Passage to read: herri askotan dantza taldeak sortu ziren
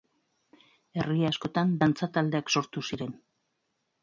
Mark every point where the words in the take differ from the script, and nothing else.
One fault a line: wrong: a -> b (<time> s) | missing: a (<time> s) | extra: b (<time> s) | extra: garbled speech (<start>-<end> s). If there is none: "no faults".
no faults